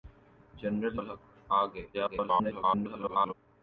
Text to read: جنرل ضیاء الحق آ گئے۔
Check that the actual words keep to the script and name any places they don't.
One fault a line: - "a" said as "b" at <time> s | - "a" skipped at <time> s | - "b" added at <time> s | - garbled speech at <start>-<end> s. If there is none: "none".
- "ضیاء" skipped at 1.0 s
- garbled speech at 1.9-3.3 s